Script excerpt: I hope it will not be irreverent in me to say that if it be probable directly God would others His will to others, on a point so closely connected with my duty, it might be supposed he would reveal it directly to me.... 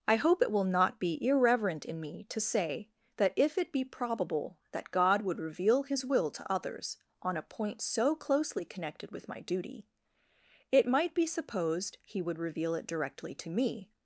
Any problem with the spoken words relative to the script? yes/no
yes